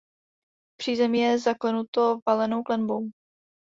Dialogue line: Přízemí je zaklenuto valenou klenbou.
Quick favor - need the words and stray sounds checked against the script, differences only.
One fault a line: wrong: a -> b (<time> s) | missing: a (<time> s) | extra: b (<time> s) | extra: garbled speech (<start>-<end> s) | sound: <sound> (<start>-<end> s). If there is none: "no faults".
no faults